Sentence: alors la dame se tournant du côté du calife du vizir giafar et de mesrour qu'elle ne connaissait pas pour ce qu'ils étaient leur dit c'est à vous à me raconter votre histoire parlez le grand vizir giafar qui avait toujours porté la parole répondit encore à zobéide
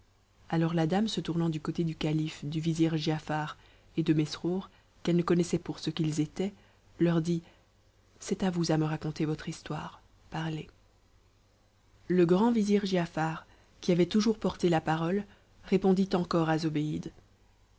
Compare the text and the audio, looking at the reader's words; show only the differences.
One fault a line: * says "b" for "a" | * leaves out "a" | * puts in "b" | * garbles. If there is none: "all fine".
* leaves out "pas"